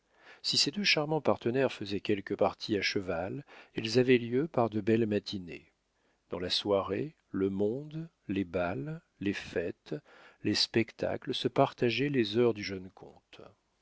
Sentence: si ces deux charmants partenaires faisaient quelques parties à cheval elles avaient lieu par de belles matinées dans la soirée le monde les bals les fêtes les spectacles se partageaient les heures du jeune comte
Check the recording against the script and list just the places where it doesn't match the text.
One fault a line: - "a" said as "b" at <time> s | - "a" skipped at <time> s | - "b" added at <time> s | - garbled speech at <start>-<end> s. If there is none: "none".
none